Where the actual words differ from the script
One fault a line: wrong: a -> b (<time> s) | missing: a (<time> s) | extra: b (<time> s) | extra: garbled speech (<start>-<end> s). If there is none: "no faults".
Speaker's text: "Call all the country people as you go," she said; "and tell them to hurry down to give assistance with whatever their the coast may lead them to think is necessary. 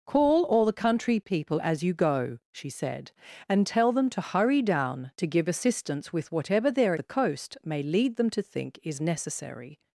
no faults